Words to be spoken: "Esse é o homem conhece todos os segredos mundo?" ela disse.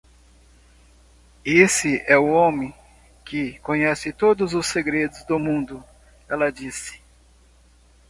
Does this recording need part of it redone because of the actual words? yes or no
yes